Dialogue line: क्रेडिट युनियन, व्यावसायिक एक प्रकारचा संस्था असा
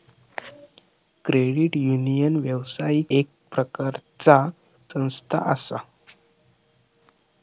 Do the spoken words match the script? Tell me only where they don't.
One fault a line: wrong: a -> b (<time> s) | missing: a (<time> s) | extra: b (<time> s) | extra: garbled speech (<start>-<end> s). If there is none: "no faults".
no faults